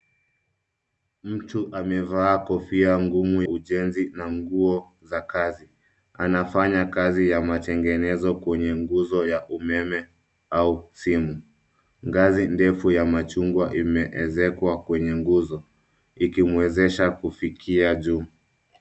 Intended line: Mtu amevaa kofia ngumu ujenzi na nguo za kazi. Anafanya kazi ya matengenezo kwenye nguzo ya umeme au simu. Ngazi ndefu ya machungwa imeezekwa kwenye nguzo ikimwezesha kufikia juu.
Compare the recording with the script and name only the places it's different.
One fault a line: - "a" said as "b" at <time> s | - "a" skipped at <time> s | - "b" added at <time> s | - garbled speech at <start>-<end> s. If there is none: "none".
none